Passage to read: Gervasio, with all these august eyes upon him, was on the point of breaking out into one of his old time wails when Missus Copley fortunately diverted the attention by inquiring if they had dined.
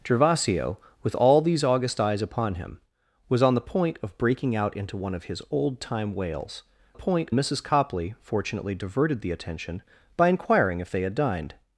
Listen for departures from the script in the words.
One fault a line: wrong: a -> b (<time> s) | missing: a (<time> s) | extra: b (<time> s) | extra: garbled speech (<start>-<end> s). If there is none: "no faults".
wrong: when -> point (6.9 s)